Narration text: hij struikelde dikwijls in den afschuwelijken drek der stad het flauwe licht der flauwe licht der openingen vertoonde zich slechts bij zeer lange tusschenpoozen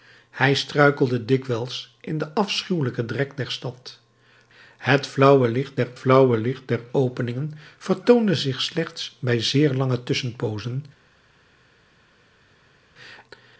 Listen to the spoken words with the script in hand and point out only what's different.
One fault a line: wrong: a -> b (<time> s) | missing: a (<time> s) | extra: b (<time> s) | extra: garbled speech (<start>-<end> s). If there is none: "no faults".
no faults